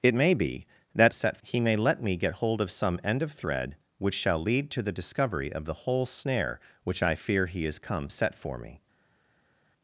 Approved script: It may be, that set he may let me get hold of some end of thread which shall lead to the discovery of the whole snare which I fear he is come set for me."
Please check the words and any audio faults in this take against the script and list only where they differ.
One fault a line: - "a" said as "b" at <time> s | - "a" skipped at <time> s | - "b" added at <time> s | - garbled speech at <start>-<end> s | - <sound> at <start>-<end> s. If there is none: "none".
none